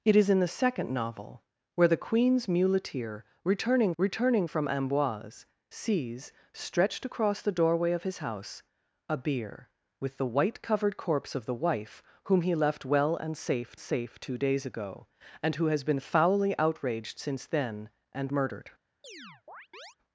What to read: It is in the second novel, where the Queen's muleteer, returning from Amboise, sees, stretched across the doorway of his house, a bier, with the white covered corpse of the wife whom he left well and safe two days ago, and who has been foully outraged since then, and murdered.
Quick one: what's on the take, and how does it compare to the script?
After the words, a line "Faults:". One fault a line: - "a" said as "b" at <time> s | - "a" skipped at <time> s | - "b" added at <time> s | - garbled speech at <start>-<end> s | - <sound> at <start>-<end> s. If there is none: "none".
It is in the second novel, where the Queen's muleteer, returning returning from Amboise, sees, stretched across the doorway of his house, a bier, with the white covered corpse of the wife whom he left well and safe safe two days ago, and who has been foully outraged since then, and murdered.
Faults:
- "returning" added at 4.0 s
- "safe" added at 13.8 s
- chirp at 19.0-20.0 s